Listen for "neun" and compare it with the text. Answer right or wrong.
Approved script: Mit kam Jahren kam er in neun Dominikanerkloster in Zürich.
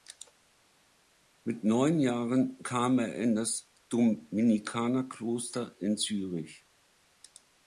wrong